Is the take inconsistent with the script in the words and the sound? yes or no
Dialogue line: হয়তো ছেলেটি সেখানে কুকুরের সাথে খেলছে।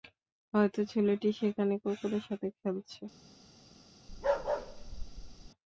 yes